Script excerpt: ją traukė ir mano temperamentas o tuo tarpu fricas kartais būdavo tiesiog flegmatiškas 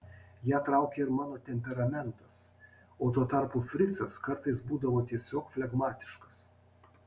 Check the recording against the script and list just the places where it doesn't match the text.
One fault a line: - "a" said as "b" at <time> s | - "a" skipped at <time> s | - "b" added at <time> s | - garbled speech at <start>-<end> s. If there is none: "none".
none